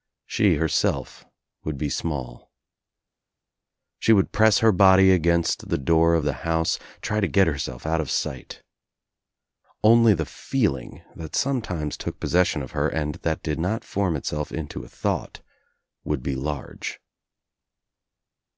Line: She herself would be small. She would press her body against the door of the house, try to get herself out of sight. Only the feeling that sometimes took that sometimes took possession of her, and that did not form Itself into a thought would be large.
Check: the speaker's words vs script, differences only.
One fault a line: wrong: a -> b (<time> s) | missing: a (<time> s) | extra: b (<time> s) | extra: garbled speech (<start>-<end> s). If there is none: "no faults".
missing: that sometimes took (12.2 s)